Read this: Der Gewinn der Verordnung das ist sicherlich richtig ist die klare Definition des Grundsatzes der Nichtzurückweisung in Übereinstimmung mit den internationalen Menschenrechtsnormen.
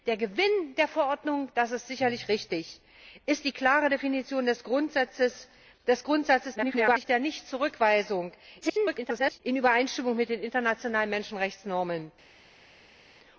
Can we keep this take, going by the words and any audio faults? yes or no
no